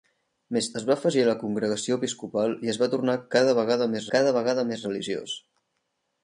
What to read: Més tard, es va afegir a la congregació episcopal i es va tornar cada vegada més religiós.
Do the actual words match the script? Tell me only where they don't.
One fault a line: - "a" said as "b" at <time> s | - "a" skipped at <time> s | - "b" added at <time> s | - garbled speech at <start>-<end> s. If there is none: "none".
- "tard" skipped at 0.7 s
- "cada vegada més" added at 4.2 s